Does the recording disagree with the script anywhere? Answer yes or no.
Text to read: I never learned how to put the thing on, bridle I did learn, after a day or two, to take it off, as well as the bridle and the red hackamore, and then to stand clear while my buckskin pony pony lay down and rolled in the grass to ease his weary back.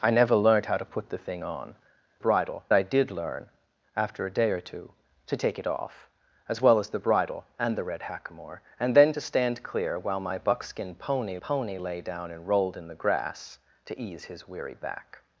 no